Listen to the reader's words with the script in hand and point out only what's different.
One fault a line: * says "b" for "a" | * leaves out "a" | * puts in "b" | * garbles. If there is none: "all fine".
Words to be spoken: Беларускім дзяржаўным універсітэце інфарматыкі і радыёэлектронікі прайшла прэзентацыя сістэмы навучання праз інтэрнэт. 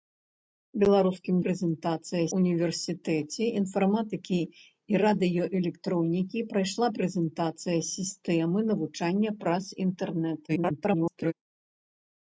* says "прэзентацыя" for "дзяржаўным"
* garbles